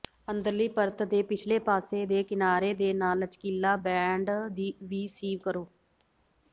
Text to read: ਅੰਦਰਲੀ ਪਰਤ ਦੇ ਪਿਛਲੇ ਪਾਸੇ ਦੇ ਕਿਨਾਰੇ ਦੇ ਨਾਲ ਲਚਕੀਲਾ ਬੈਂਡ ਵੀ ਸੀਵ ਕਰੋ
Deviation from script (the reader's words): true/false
false